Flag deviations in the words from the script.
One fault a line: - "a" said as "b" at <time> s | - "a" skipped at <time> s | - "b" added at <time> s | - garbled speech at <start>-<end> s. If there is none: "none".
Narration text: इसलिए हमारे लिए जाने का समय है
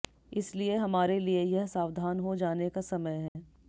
- "यह सावधान हो" added at 1.4 s